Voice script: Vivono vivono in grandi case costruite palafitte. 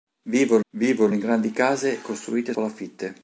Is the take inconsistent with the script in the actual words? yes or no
no